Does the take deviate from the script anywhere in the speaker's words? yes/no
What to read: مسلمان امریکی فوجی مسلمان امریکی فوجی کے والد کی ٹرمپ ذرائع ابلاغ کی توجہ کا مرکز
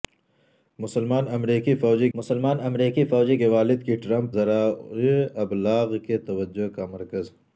no